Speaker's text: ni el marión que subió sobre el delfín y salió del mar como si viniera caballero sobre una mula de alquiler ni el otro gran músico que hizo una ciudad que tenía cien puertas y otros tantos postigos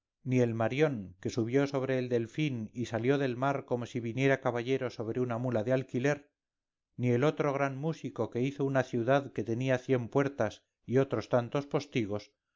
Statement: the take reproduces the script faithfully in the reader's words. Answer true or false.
true